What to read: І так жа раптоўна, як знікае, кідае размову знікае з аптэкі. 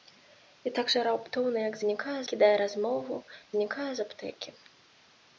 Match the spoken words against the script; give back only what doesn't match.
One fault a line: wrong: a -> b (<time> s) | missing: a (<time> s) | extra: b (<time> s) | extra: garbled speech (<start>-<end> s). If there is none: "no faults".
no faults